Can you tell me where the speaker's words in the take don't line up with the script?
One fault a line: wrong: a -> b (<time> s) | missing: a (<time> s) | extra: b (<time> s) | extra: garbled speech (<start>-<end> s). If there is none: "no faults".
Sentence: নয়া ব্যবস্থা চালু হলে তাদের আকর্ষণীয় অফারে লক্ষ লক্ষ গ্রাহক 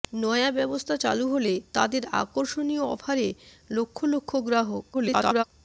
extra: garbled speech (4.9-5.4 s)